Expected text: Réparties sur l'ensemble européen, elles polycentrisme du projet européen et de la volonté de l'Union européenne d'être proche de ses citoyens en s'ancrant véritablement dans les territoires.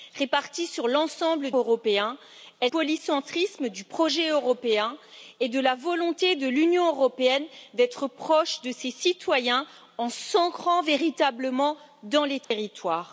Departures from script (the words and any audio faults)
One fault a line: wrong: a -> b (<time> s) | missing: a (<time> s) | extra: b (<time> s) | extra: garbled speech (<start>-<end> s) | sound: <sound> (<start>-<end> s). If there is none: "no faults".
sound: dropout (12.4-12.5 s)